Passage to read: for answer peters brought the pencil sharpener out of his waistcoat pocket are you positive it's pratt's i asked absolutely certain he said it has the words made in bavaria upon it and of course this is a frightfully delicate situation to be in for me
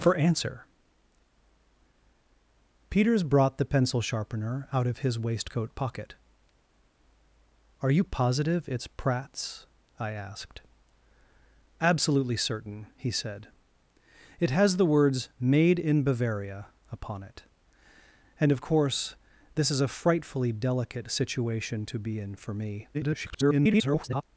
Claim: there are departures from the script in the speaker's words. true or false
true